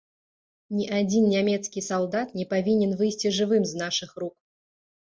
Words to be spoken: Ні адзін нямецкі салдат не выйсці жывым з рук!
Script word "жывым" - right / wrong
right